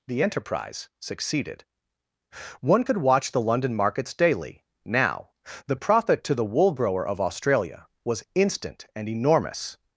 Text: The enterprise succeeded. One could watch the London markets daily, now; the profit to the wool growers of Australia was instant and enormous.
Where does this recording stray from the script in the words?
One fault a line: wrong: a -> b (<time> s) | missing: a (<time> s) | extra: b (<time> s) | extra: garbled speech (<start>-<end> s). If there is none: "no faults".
wrong: growers -> grower (6.7 s)